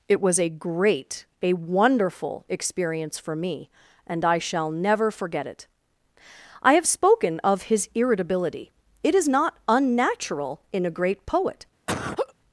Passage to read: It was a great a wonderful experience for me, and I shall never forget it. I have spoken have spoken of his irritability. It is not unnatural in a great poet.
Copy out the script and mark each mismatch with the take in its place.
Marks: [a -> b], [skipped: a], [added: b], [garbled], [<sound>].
It was a great a wonderful experience for me, and I shall never forget it. I have spoken [skipped: have spoken] of his irritability. It is not unnatural in a great poet. [laugh]